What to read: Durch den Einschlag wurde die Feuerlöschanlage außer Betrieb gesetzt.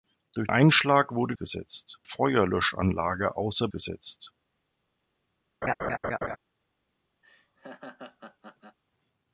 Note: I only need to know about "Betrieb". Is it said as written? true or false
false